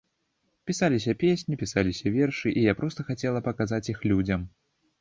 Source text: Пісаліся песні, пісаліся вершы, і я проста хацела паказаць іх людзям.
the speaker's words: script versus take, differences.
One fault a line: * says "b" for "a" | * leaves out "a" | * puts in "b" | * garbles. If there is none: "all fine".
all fine